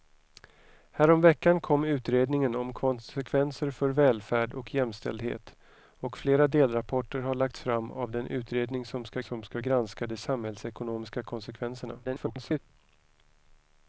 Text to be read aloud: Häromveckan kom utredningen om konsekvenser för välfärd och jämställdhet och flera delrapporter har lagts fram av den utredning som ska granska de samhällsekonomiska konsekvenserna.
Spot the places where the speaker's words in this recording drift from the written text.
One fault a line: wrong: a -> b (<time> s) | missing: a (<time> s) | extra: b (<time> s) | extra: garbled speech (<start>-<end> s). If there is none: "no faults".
extra: som ska (9.2 s)
extra: garbled speech (12.0-12.6 s)